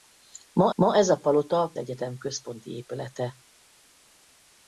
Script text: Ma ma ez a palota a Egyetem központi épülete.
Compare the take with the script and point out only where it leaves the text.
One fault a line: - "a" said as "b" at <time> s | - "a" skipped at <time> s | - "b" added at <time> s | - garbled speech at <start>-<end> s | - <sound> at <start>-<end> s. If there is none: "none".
none